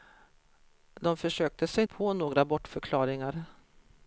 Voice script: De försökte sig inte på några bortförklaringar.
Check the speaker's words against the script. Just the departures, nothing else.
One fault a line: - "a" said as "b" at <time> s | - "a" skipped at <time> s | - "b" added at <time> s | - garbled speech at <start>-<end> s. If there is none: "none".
- "inte" skipped at 1.8 s